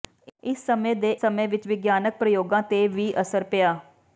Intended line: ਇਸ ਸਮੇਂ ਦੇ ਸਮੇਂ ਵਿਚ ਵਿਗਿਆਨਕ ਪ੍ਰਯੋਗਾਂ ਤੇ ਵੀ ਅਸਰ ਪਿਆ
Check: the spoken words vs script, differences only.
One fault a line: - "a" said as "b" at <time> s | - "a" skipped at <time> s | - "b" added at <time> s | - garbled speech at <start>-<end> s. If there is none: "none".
none